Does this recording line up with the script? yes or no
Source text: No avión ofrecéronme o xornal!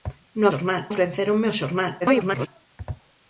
no